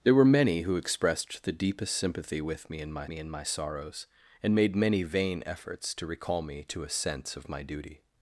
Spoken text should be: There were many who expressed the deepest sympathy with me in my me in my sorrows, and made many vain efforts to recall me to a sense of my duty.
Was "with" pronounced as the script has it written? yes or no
yes